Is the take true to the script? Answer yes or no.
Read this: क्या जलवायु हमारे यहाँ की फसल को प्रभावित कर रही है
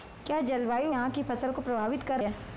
no